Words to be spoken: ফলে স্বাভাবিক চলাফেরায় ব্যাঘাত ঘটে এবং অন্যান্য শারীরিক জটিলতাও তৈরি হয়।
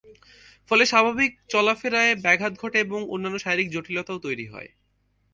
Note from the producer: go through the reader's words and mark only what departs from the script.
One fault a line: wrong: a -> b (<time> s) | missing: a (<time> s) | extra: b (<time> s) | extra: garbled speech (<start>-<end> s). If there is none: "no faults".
no faults